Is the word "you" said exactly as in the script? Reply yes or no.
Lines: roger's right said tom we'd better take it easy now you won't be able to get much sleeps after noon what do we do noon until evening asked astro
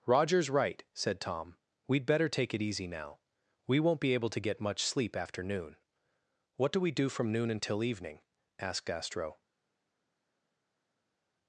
no